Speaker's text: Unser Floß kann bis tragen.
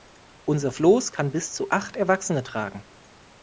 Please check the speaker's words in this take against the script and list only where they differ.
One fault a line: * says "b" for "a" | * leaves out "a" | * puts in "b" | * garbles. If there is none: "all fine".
* puts in "zu acht Erwachsene"